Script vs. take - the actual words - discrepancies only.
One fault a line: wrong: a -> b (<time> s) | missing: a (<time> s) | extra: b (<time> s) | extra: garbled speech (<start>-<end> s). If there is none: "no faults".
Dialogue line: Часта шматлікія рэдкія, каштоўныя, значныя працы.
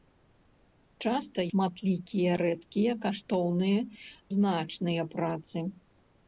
no faults